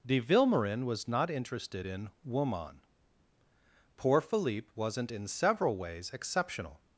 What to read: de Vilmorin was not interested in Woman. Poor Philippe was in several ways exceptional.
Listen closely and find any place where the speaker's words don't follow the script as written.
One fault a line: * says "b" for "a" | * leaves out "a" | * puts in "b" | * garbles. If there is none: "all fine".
* says "wasn't" for "was"